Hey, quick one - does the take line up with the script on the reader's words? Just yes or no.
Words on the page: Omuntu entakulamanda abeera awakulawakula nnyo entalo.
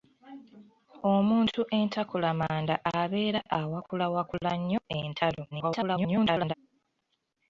no